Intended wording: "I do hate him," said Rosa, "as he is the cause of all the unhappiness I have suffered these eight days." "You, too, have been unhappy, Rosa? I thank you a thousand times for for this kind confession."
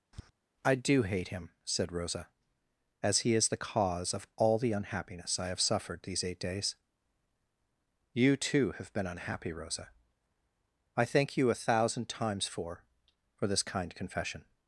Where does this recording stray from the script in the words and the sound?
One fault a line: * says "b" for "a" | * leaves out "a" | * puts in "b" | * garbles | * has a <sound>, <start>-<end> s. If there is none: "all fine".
* has a tap, 0.1-0.3 s